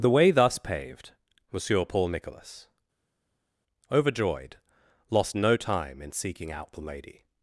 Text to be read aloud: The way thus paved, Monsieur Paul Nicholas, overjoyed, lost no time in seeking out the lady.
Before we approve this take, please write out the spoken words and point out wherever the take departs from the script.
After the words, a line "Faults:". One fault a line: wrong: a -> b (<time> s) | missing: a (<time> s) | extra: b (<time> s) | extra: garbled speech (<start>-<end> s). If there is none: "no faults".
The way thus paved, Monsieur Paul Nicholas, overjoyed, lost no time in seeking out the lady.
Faults:
no faults